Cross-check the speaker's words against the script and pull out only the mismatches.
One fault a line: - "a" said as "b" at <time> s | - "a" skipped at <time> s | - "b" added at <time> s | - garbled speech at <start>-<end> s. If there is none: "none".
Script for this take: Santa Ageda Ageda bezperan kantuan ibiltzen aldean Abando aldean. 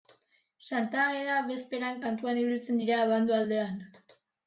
- "Ageda" skipped at 1.4 s
- "aldean" said as "dira" at 2.9 s